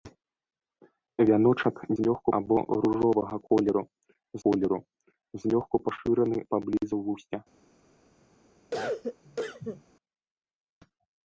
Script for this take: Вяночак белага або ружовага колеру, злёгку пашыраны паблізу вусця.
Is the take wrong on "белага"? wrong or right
wrong